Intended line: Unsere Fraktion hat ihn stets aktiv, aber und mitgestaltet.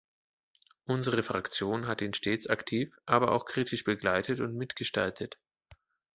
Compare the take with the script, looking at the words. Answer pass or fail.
fail